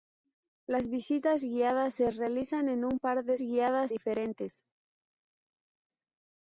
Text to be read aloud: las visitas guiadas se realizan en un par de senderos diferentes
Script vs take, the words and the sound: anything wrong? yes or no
yes